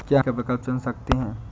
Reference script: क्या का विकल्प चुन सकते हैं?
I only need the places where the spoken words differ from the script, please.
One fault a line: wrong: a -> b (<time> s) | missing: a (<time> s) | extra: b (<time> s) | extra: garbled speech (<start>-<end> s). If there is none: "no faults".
no faults